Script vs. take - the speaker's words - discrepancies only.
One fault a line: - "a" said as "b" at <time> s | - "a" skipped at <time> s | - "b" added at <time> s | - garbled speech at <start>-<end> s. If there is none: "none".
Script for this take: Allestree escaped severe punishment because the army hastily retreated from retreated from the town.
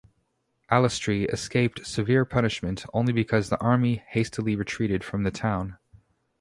- "only" added at 2.9 s
- "retreated from" skipped at 5.2 s